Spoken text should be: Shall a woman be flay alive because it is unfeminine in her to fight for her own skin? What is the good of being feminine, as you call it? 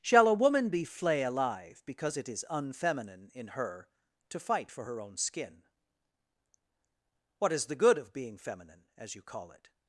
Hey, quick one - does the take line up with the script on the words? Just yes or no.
yes